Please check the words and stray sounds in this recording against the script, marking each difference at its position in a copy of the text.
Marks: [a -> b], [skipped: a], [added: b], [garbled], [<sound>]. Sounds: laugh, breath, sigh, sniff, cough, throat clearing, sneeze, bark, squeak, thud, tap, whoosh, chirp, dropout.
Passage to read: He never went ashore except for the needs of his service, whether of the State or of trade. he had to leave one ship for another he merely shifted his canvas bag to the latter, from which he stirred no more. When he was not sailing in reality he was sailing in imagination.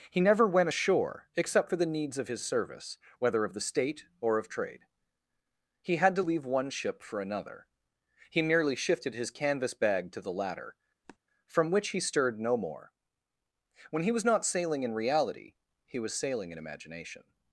He never went ashore except for the needs of his service, whether of the State or of trade. he had to leave one ship for another he merely shifted his canvas bag to the latter, [sniff] from which he stirred no more. When he was not sailing in reality he was sailing in imagination.